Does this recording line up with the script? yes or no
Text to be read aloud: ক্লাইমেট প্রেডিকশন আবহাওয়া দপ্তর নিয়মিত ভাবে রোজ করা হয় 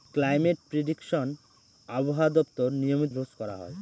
no